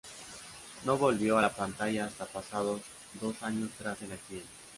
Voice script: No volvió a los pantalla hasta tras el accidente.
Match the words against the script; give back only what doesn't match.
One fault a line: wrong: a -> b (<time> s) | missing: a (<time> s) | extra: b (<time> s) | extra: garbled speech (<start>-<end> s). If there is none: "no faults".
wrong: los -> la (1.4 s)
extra: pasados dos años (2.3 s)